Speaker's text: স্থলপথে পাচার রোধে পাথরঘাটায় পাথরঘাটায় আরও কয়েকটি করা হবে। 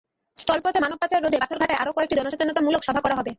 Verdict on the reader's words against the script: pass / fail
fail